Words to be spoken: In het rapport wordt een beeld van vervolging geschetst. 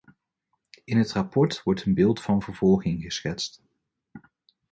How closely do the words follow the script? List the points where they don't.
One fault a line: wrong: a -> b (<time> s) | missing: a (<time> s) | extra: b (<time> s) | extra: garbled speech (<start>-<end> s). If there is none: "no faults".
no faults